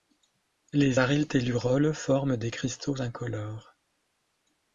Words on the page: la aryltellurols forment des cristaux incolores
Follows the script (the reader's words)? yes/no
no